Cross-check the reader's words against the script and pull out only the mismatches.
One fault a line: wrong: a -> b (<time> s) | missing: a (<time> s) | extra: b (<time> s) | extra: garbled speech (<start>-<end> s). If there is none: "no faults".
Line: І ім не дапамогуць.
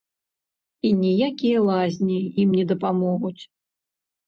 extra: ніякія лазні (1.0 s)